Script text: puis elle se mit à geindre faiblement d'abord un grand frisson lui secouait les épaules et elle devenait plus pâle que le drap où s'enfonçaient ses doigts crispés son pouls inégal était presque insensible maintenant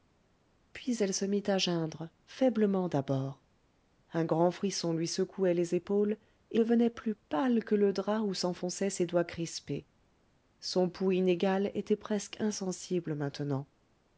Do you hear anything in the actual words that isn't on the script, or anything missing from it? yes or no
yes